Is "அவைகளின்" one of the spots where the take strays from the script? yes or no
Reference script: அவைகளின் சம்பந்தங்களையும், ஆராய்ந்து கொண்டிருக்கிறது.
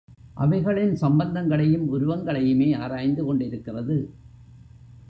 no